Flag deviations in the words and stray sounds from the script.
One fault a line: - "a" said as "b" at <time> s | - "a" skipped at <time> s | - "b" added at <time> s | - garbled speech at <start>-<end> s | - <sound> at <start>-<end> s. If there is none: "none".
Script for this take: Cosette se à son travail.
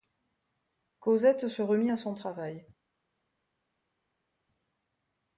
- "remit" added at 1.6 s